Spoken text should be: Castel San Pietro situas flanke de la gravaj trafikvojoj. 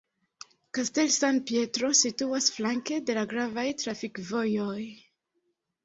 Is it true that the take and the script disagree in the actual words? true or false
false